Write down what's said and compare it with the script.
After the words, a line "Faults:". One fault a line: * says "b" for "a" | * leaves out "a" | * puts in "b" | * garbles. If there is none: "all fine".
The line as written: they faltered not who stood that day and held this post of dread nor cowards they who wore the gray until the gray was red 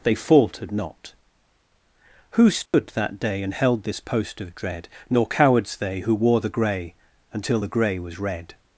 they faltered not who stood that day and held this post of dread nor cowards they who wore the gray until the gray was red
Faults:
all fine